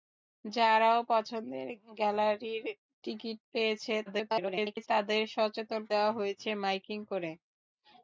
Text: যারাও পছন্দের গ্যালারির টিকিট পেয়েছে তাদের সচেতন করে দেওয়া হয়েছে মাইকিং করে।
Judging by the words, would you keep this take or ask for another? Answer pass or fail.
fail